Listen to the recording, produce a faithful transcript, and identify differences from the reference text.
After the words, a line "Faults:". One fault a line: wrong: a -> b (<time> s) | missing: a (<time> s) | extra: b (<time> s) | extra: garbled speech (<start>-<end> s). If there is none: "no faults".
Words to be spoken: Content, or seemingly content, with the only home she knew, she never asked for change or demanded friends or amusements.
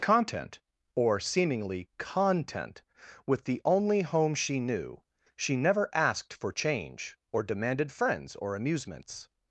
Content, or seemingly content, with the only home she knew, she never asked for change or demanded friends or amusements.
Faults:
no faults